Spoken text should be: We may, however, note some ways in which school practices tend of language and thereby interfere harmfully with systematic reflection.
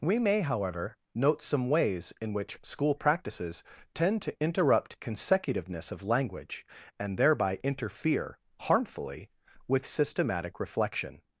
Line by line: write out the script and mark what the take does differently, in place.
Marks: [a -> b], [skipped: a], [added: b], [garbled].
We may, however, note some ways in which school practices tend [added: to interrupt consecutiveness] of language and thereby interfere harmfully with systematic reflection.